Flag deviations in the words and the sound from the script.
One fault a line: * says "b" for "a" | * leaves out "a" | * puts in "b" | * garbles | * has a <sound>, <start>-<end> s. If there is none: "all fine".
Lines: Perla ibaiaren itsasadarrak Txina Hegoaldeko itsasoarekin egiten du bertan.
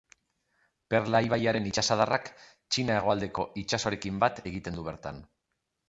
* puts in "bat"